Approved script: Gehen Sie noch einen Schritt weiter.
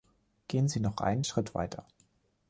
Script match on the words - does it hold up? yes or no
yes